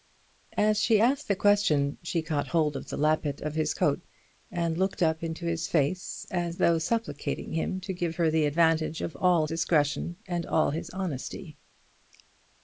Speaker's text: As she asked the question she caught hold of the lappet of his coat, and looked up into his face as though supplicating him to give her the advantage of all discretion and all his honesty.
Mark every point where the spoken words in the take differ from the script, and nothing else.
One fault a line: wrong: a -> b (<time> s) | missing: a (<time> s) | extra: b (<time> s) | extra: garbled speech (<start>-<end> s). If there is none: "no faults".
no faults